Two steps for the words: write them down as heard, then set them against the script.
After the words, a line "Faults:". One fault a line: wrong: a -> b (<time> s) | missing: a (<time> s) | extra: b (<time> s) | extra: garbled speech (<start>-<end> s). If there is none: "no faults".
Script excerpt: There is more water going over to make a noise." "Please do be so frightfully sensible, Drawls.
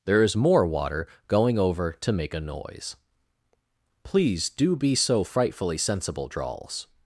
There is more water going over to make a noise." "Please do be so frightfully sensible, Drawls.
Faults:
no faults